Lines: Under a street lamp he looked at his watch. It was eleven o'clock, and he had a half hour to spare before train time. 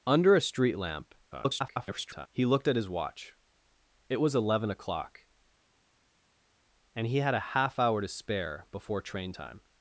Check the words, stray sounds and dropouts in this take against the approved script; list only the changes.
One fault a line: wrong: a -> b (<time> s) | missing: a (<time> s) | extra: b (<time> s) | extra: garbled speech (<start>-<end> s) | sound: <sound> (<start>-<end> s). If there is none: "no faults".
extra: garbled speech (1.3-2.3 s)